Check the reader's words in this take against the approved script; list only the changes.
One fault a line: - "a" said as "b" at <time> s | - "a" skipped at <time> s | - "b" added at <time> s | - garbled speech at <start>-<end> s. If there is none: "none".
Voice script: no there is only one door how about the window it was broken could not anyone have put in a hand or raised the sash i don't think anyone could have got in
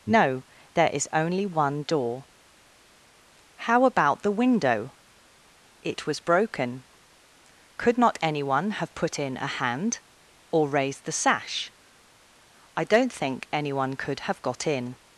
none